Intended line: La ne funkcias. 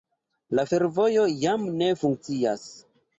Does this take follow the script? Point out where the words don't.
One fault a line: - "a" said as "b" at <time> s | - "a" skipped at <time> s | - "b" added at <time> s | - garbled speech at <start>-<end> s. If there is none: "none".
- "fervojo jam" added at 0.7 s